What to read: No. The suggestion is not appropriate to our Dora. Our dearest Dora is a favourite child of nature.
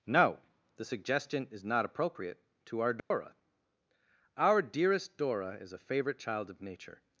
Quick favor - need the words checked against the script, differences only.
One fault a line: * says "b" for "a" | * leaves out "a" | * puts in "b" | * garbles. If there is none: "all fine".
all fine